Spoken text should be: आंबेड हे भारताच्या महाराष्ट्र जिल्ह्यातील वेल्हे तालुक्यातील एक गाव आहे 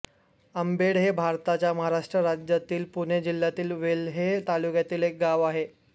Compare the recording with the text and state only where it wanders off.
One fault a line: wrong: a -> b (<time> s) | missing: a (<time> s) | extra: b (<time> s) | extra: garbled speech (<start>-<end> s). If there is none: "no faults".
extra: राज्यातील पुणे (2.2 s)